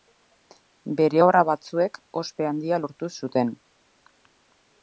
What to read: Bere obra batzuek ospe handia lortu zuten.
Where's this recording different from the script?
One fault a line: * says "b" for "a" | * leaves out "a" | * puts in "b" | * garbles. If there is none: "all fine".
all fine